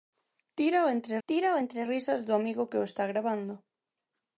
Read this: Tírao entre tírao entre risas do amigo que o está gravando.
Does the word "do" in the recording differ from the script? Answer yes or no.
no